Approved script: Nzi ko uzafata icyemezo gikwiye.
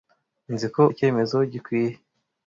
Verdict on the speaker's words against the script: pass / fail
fail